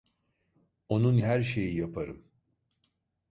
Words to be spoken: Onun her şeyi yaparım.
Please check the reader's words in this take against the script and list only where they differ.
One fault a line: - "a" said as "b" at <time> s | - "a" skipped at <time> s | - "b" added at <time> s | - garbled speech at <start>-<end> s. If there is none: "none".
none